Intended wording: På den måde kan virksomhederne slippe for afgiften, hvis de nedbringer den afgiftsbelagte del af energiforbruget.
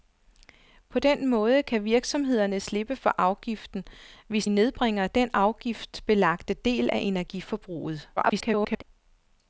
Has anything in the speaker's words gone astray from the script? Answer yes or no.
yes